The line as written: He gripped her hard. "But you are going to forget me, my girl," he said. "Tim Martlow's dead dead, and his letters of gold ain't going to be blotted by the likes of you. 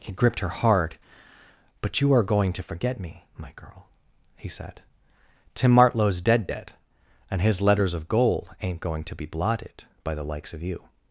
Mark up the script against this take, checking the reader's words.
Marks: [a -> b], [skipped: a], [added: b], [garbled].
He gripped her hard. "But you are going to forget me, my girl," he said. "Tim Martlow's dead dead, and his letters of gold ain't going to be blotted by the likes of you.